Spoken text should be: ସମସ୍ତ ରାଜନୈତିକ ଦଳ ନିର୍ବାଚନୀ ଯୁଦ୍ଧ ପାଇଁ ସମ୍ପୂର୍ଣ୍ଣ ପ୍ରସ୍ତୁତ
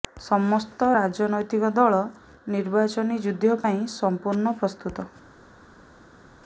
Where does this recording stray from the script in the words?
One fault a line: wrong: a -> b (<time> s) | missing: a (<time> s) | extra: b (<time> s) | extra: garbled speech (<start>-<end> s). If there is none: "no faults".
no faults